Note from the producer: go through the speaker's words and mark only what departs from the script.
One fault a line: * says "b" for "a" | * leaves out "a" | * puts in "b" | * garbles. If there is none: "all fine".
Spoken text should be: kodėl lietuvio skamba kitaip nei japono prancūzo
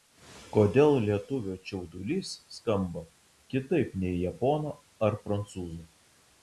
* puts in "čiaudulys"
* puts in "ar"